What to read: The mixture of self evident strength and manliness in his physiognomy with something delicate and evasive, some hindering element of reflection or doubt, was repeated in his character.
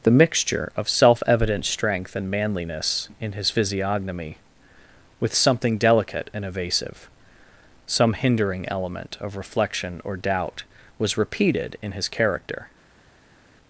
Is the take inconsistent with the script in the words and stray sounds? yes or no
no